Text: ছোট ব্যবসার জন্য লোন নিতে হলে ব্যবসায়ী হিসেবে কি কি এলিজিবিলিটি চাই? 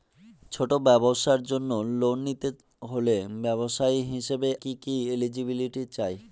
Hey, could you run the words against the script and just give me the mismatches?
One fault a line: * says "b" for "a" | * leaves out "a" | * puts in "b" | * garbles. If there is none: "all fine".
all fine